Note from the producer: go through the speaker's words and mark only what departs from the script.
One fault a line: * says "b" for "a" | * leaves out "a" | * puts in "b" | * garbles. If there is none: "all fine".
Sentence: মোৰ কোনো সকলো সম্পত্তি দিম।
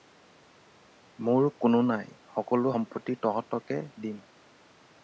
* puts in "নাই"
* puts in "তহঁতকে"